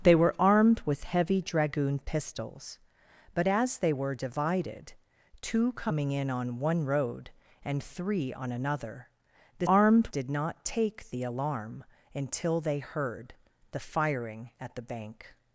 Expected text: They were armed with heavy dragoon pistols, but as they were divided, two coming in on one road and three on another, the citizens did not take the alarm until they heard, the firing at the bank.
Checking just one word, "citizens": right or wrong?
wrong